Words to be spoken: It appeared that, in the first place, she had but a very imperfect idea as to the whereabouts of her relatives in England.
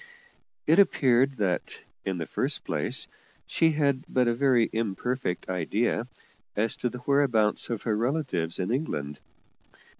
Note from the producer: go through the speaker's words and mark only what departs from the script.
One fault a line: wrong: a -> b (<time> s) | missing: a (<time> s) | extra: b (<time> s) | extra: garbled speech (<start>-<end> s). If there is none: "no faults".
no faults